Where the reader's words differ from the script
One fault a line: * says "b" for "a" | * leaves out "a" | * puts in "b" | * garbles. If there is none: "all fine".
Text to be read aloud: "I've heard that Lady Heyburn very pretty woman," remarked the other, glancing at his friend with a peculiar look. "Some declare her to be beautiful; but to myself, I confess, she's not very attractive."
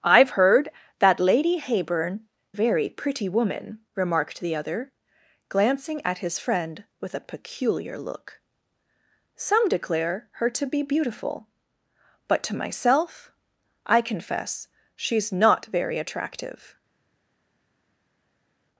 all fine